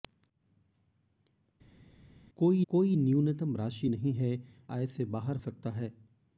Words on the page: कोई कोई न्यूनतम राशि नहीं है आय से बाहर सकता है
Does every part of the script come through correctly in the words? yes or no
yes